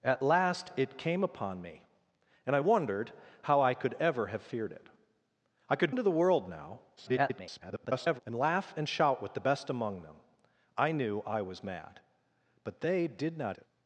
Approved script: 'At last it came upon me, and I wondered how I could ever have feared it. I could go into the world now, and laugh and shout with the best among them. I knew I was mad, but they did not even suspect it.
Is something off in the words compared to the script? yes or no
yes